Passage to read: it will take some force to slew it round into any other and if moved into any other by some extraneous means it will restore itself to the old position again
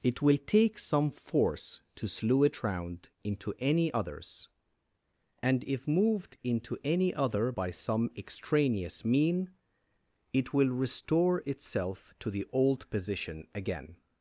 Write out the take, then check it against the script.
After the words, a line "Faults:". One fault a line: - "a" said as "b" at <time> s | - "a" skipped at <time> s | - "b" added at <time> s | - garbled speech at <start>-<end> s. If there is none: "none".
it will take some force to slew it round into any others and if moved into any other by some extraneous mean it will restore itself to the old position again
Faults:
- "other" said as "others" at 3.9 s
- "means" said as "mean" at 9.0 s